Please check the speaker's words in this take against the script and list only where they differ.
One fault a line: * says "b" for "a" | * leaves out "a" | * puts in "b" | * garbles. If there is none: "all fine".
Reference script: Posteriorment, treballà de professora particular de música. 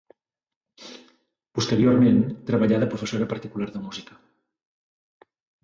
all fine